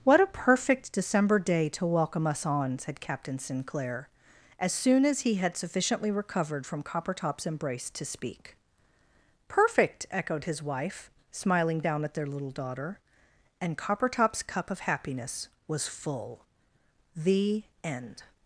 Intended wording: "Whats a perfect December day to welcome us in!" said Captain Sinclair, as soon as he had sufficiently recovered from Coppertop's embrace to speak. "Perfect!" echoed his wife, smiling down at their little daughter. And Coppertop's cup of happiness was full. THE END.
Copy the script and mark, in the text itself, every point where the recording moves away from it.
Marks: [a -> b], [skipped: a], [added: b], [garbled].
["Whats -> What] a perfect December day to welcome us [in!" -> on] said Captain Sinclair, as soon as he had sufficiently recovered from Coppertop's embrace to speak. "Perfect!" echoed his wife, smiling down at their little daughter. And Coppertop's cup of happiness was full. THE END.